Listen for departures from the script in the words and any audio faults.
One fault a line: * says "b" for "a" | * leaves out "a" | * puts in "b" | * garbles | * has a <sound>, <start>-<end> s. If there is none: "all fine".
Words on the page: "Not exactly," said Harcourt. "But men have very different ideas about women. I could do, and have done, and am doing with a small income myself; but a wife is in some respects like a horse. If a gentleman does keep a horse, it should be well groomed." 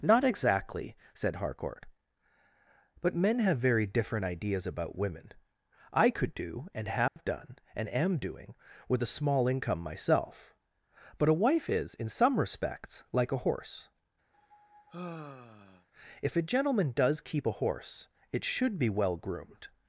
* has a dropout, 7.1-7.2 s
* has a sigh, 14.3-15.9 s